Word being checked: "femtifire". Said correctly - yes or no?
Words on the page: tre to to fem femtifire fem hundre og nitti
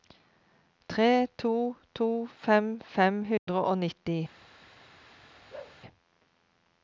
no